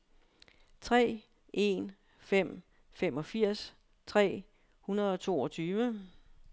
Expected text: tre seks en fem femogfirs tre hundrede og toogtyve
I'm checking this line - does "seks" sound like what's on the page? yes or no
no